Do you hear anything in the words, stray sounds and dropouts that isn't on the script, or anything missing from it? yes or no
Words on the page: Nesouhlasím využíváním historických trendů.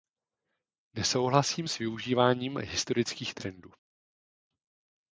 yes